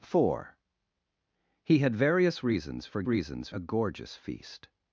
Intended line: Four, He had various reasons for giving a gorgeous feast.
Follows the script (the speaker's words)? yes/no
no